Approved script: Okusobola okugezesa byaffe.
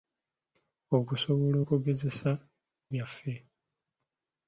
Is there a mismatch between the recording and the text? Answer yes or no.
no